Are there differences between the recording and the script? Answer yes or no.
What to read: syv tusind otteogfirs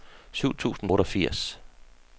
no